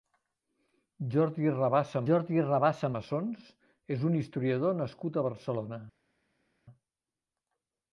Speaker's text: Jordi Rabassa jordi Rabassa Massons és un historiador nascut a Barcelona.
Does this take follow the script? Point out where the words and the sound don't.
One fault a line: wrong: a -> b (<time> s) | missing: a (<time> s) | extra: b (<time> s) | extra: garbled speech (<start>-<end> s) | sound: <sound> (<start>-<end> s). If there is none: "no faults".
no faults